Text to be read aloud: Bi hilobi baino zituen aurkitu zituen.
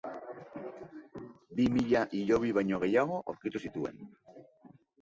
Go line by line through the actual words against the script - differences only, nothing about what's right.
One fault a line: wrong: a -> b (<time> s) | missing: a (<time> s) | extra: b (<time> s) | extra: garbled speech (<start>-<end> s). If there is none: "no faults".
extra: mila (1.8 s)
wrong: zituen -> gehiago (2.9 s)